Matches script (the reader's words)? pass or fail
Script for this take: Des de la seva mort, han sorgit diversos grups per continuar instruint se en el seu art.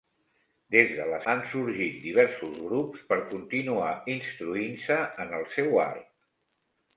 fail